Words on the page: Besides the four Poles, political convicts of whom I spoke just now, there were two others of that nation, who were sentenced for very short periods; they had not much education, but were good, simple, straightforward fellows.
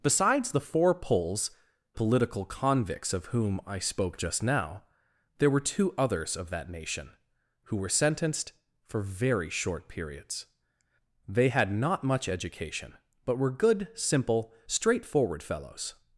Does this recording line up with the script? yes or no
yes